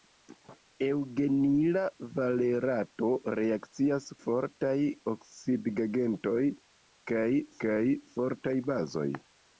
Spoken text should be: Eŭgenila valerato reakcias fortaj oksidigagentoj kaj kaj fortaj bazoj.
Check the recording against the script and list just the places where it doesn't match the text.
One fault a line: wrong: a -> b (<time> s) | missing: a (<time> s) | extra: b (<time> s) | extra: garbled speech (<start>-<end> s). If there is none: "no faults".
no faults